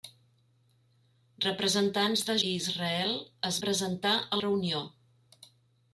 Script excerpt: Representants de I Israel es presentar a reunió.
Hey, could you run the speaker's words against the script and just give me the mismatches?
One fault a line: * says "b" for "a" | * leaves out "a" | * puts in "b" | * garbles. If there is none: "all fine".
all fine